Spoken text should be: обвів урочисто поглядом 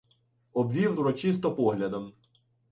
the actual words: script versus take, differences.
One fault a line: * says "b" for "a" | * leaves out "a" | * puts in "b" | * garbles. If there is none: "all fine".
all fine